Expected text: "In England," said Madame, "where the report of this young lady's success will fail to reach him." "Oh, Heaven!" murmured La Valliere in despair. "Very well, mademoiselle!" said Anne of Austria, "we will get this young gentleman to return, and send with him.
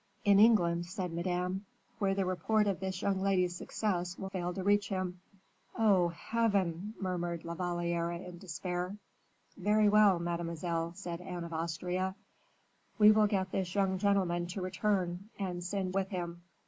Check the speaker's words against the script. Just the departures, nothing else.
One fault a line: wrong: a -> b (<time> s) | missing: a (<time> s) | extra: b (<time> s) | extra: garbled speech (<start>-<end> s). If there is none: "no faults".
no faults